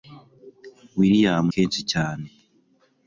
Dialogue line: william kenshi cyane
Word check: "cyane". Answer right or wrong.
right